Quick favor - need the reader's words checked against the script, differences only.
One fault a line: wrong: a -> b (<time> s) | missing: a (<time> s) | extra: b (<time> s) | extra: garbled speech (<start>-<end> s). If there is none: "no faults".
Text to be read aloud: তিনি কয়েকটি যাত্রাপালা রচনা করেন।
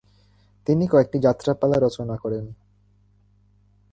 no faults